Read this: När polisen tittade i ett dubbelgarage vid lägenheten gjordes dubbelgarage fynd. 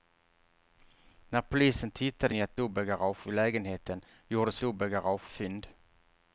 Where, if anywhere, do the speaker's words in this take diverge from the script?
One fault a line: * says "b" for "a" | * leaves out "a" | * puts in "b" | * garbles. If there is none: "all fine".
all fine